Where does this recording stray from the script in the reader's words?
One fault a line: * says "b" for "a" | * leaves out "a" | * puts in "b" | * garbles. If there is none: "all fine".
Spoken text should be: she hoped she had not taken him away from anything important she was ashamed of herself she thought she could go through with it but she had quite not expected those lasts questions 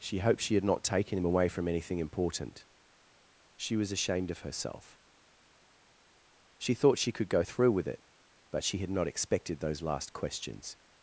* leaves out "quite"
* says "last" for "lasts"